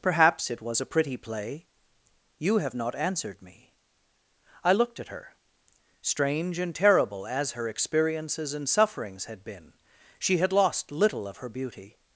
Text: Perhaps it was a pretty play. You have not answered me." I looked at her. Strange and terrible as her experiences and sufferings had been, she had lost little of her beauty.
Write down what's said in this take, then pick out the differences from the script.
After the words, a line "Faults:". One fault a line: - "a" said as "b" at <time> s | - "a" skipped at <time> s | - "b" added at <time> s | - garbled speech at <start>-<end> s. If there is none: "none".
Perhaps it was a pretty play. You have not answered me." I looked at her. Strange and terrible as her experiences and sufferings had been, she had lost little of her beauty.
Faults:
none